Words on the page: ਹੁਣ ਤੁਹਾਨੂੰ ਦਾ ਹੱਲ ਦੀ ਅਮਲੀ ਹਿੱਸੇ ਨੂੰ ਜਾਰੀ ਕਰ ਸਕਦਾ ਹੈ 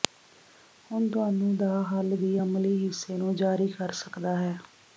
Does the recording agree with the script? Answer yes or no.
yes